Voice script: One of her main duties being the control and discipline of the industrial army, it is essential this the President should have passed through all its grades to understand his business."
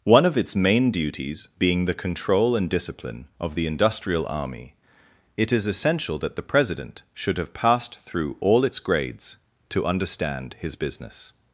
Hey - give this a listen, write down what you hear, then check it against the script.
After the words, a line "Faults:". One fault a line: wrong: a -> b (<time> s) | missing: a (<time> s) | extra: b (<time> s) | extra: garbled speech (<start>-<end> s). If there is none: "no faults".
One of its main duties being the control and discipline of the industrial army, it is essential that the President should have passed through all its grades to understand his business."
Faults:
wrong: her -> its (0.3 s)
wrong: this -> that (6.2 s)